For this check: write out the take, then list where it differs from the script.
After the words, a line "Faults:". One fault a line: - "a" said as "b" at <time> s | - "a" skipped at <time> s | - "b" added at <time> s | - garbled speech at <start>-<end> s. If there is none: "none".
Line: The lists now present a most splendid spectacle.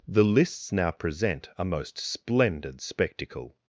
The lists now present a most splendid spectacle.
Faults:
none